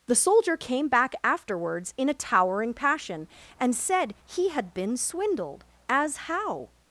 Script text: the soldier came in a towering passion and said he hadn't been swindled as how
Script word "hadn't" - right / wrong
wrong